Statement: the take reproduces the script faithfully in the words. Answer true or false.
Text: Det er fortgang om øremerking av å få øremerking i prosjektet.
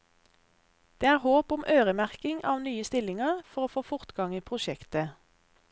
false